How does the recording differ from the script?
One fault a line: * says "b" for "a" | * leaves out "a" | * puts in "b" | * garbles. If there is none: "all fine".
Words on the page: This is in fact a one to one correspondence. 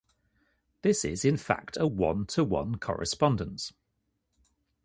all fine